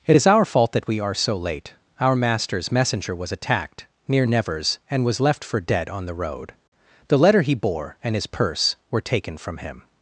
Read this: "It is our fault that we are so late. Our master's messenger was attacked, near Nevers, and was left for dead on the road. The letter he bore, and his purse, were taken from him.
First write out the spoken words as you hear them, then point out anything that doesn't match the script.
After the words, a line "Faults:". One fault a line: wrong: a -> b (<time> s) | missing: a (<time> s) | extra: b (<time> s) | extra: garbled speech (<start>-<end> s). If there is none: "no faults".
"It is our fault that we are so late. Our master's messenger was attacked, near Nevers, and was left for dead on the road. The letter he bore, and his purse, were taken from him.
Faults:
no faults